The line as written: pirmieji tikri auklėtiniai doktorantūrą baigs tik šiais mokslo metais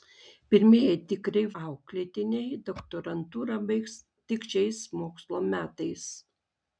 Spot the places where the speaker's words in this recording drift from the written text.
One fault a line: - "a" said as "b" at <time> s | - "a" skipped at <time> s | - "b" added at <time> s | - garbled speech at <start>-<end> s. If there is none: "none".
none